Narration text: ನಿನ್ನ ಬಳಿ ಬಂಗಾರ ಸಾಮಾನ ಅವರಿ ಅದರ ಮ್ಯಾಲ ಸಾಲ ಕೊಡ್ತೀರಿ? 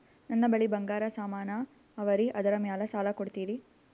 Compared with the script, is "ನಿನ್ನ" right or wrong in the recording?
wrong